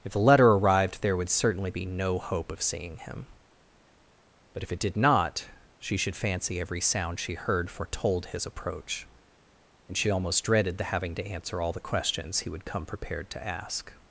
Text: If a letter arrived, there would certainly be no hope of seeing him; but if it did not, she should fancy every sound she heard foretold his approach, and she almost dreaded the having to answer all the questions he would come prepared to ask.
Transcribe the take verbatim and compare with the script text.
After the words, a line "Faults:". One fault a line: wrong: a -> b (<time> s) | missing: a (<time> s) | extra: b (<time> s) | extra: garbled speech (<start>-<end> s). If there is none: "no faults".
If the letter arrived, there would certainly be no hope of seeing him; but if it did not, she should fancy every sound she heard foretold his approach, and she almost dreaded the having to answer all the questions he would come prepared to ask.
Faults:
wrong: a -> the (0.1 s)